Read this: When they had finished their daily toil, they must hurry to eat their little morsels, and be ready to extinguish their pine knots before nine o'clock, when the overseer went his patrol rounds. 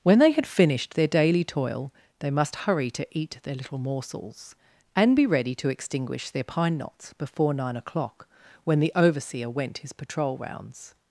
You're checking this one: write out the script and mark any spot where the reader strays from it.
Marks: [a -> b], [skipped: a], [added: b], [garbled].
When they had finished their daily toil, they must hurry to eat their little morsels, and be ready to extinguish their pine knots before nine o'clock, when the overseer went his patrol rounds.